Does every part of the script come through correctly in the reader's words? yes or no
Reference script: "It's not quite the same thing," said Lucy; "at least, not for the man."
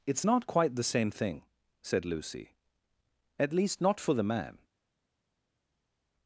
yes